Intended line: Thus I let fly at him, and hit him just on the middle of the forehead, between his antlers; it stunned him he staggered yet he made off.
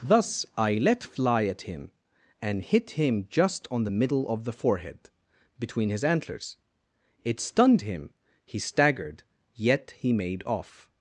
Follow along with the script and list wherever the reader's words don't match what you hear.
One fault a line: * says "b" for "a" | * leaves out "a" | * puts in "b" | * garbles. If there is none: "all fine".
all fine